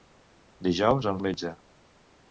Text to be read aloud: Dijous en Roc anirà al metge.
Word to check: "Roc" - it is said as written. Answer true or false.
false